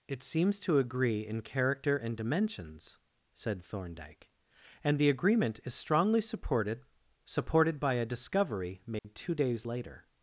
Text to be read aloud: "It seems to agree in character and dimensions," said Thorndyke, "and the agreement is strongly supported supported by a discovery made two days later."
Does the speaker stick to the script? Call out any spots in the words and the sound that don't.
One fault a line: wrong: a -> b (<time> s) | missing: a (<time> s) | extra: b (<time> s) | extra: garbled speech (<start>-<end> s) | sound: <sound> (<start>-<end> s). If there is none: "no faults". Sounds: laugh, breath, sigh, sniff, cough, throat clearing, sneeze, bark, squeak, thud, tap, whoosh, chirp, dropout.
sound: dropout (9.0-9.0 s)